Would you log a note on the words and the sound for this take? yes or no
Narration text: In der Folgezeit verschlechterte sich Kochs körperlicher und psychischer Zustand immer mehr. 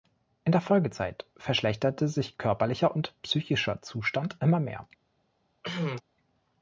yes